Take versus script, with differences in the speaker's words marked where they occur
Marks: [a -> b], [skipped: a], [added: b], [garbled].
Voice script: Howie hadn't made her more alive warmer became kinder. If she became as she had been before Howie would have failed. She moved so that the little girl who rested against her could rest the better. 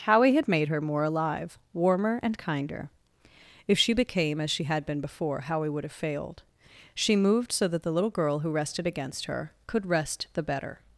Howie [hadn't -> had] made her more alive warmer [became -> and] kinder. If she became as she had been before Howie would have failed. She moved so that the little girl who rested against her could rest the better.